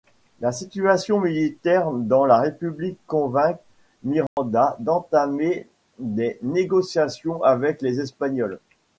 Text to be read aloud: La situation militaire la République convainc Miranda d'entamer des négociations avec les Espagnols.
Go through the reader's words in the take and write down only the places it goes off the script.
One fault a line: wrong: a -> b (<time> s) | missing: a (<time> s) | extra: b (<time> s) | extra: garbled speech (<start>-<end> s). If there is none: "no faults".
extra: dans (1.9 s)